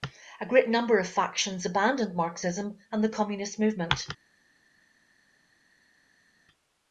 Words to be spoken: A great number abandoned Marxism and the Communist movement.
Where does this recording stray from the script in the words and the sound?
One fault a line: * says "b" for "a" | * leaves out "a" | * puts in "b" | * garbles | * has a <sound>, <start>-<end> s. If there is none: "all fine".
* puts in "of factions"